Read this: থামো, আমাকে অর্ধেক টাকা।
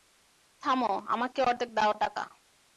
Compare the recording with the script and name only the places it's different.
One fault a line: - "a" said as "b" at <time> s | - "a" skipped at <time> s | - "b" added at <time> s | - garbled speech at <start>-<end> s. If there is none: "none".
- "দাও" added at 1.7 s